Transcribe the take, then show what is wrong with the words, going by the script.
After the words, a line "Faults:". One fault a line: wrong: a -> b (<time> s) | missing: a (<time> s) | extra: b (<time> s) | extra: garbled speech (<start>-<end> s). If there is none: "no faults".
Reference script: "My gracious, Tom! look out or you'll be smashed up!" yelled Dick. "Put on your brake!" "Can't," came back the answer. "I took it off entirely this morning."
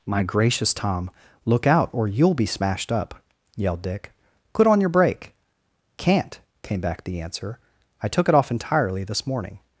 "My gracious, Tom! look out or you'll be smashed up!" yelled Dick. "Put on your brake!" "Can't," came back the answer. "I took it off entirely this morning."
Faults:
no faults